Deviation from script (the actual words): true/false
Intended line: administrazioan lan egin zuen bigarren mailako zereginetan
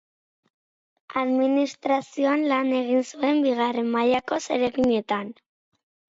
false